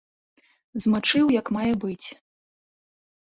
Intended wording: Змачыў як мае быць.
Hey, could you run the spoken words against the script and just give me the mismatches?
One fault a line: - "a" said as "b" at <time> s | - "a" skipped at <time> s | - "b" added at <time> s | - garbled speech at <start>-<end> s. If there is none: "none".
none